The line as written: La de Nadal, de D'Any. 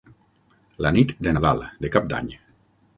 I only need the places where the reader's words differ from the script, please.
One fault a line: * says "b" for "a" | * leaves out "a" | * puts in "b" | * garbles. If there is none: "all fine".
* puts in "nit"
* puts in "Cap"